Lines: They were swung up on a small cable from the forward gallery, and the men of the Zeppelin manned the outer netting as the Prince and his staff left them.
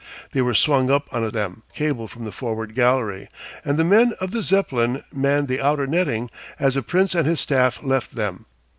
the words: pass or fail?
fail